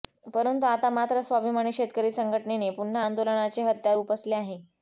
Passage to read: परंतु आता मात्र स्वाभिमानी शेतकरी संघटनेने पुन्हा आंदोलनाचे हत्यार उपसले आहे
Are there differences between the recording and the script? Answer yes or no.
no